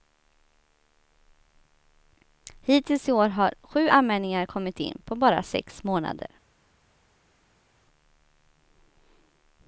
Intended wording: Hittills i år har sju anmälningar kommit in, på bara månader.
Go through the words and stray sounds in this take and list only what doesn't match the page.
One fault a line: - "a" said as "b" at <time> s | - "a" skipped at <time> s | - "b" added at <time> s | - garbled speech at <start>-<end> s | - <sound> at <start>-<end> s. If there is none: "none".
- "sex" added at 5.4 s